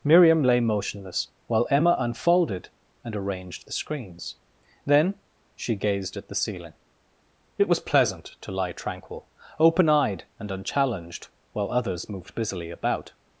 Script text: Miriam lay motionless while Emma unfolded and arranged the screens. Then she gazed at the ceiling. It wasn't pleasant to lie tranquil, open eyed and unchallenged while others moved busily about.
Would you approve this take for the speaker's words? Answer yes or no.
no